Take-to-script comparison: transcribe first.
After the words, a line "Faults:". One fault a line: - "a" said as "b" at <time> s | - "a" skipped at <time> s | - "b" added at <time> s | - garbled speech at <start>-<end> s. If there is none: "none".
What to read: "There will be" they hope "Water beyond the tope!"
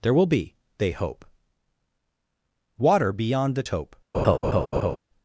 "There will be" they hope "Water beyond the tope!"
Faults:
none